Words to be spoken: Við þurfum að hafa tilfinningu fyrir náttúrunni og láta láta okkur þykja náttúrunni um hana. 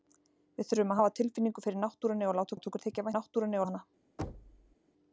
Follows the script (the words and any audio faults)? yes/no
no